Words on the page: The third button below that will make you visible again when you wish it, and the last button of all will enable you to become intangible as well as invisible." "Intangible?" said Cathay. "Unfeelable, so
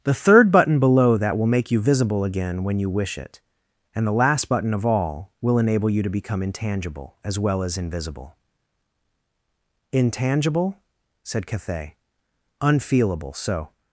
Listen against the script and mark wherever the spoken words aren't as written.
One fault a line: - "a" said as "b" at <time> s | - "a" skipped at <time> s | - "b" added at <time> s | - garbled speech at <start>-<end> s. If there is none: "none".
none